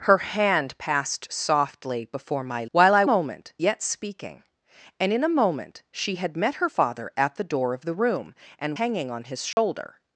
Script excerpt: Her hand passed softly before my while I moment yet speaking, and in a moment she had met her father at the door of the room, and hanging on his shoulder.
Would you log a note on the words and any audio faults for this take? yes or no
yes